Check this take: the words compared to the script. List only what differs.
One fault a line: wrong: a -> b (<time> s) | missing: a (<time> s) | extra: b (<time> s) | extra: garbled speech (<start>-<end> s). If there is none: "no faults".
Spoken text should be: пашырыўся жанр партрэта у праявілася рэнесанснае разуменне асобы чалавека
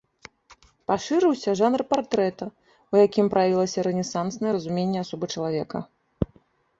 extra: якім (3.0 s)